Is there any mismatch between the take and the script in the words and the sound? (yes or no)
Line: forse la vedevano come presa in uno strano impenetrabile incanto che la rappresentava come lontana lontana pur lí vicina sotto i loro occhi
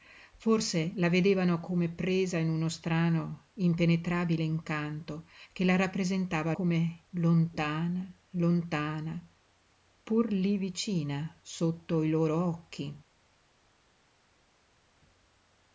no